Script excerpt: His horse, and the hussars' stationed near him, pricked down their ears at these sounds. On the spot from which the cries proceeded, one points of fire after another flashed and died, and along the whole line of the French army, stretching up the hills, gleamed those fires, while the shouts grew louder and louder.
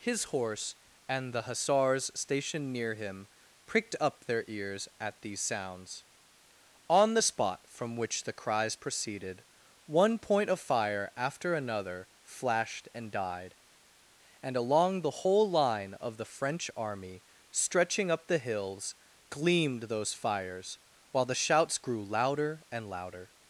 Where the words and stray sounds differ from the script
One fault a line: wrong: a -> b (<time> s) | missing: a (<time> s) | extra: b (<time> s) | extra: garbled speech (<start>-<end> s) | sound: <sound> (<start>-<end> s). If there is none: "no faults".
wrong: down -> up (4.0 s)
wrong: points -> point (10.2 s)